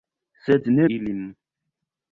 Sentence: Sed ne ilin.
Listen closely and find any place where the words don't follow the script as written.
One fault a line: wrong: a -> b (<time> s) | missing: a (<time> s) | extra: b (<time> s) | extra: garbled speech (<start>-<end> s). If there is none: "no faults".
no faults